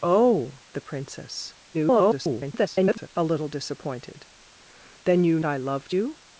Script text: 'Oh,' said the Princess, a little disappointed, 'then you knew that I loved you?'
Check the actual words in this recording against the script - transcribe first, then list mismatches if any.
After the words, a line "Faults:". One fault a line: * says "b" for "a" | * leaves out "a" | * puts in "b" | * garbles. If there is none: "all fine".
'Oh,' the Princess, [garbled] a little disappointed, 'then you I loved you?'
Faults:
* leaves out "said"
* garbles
* leaves out "knew that"